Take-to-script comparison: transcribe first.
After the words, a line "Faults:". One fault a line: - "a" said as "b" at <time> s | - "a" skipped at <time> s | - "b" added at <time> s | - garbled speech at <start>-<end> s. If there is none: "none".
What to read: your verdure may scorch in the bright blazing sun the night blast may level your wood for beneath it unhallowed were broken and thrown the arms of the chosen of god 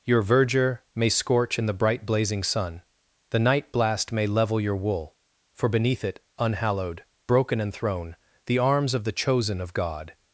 your verdure may scorch in the bright blazing sun the night blast may level your wool for beneath it unhallowed broken and thrown the arms of the chosen of god
Faults:
- "wood" said as "wool" at 4.8 s
- "were" skipped at 7.0 s